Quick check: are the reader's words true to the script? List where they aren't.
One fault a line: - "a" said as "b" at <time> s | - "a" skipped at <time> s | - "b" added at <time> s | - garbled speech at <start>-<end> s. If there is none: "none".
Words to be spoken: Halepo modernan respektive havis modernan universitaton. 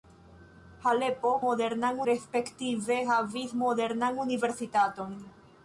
none